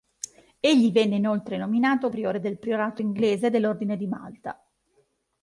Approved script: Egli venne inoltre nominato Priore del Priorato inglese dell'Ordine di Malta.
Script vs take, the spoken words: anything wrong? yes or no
no